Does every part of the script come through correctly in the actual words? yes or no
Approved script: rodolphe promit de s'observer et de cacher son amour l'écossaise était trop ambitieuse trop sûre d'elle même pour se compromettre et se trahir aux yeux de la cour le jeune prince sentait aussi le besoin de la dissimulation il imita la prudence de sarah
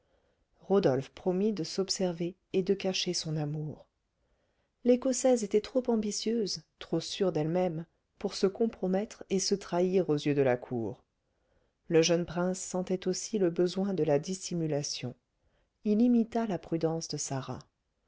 yes